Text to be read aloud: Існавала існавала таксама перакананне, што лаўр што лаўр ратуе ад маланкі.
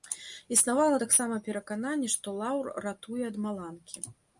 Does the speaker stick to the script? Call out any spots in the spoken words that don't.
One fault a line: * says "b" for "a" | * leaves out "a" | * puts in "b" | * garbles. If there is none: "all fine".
* leaves out "існавала"
* leaves out "што лаўр"